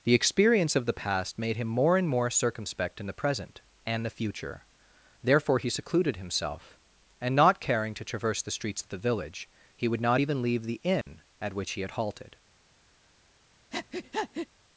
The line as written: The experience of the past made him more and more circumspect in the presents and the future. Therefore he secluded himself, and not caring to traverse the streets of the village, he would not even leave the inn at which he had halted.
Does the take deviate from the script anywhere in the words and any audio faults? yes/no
yes